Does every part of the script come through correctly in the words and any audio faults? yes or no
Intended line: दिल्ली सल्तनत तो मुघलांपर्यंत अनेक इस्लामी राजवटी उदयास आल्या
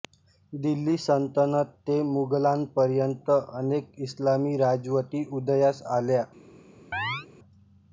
no